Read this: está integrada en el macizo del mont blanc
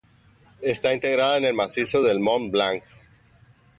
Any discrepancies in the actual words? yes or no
no